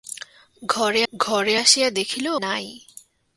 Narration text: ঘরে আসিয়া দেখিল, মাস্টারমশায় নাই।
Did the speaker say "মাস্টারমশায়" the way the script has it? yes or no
no